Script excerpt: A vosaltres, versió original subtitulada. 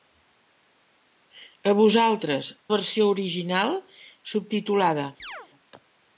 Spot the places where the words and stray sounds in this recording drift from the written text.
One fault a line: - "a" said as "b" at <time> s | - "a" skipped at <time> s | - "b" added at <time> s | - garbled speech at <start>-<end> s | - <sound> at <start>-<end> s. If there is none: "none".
- chirp at 5.2-5.5 s